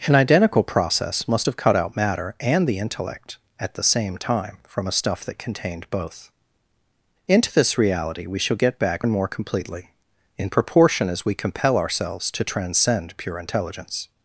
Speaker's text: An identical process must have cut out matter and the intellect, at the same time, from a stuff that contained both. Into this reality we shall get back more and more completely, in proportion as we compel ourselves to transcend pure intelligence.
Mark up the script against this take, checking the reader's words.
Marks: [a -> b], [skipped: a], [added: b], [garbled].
An identical process must have cut out matter and the intellect, at the same time, from a stuff that contained both. Into this reality we shall get back [skipped: more] and more completely, in proportion as we compel ourselves to transcend pure intelligence.